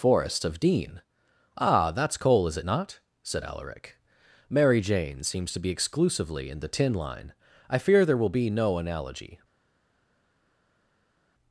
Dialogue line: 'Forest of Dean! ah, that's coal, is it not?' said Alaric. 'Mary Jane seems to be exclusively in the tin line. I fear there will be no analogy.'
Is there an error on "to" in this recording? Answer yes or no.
no